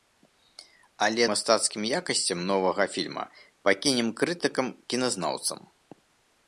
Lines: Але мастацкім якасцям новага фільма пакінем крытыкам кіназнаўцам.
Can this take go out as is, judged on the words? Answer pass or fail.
pass